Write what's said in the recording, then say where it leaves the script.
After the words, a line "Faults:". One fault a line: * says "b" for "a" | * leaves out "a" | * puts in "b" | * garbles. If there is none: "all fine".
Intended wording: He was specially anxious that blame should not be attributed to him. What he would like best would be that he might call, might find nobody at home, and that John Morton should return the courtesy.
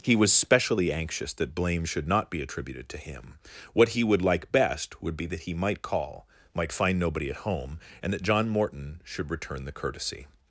He was specially anxious that blame should not be attributed to him. What he would like best would be that he might call, might find nobody at home, and that John Morton should return the courtesy.
Faults:
all fine